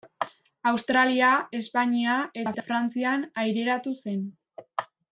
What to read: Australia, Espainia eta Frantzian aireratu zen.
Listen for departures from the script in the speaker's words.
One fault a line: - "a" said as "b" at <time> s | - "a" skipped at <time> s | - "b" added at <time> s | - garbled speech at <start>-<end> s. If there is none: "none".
none